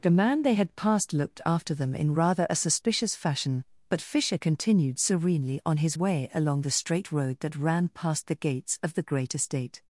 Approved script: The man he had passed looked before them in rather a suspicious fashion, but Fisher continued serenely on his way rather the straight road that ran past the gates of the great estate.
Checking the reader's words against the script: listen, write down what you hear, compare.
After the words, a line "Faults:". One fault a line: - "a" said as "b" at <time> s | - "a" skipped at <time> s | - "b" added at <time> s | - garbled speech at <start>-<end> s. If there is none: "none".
The man they had passed looked after them in rather a suspicious fashion, but Fisher continued serenely on his way along the straight road that ran past the gates of the great estate.
Faults:
- "he" said as "they" at 0.4 s
- "before" said as "after" at 1.4 s
- "rather" said as "along" at 6.3 s